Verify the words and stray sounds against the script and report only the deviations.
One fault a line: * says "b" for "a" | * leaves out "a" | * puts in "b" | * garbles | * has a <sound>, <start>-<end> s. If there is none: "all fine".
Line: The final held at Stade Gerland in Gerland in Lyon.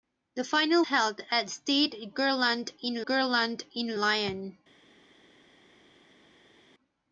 all fine